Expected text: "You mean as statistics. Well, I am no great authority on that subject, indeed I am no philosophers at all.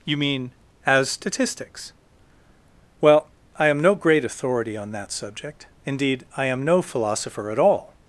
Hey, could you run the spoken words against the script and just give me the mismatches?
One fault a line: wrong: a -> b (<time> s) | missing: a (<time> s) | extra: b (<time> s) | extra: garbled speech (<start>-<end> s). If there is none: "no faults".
wrong: philosophers -> philosopher (6.8 s)